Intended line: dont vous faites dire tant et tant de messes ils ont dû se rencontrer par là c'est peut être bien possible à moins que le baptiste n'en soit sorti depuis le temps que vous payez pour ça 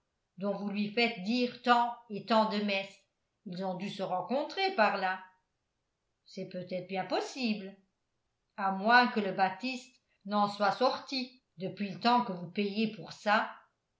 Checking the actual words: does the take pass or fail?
fail